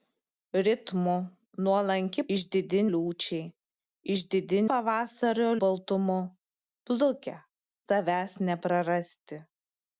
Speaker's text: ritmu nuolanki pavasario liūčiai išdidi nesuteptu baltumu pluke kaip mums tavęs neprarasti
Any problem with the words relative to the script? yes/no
yes